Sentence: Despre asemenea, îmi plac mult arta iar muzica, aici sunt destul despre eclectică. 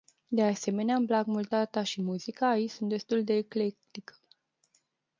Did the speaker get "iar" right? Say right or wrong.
wrong